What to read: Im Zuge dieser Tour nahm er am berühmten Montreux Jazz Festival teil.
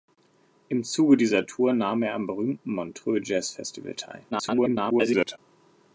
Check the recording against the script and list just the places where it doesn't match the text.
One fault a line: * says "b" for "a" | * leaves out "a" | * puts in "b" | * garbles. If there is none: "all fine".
* garbles